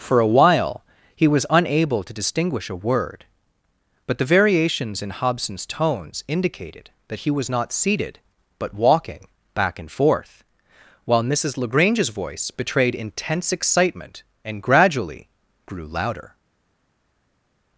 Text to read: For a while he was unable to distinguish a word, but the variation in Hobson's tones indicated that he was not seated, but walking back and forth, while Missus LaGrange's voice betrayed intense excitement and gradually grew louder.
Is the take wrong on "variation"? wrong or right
wrong